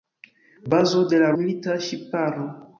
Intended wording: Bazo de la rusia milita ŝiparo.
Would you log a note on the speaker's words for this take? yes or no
yes